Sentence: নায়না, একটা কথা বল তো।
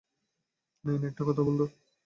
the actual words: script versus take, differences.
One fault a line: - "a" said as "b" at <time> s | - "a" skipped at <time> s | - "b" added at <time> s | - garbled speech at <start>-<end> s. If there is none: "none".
none